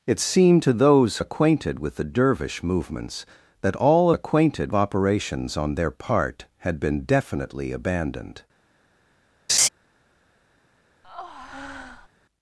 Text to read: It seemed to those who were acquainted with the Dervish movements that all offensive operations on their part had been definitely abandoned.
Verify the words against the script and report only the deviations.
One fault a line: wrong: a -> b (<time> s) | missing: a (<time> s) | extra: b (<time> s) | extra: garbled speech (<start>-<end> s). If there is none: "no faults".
missing: who were (1.2 s)
wrong: offensive -> acquainted (4.1 s)